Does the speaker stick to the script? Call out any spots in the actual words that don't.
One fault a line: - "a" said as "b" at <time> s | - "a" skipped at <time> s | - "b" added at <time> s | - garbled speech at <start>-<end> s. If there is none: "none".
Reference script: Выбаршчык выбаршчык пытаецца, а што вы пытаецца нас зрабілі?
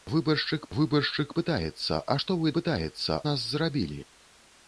none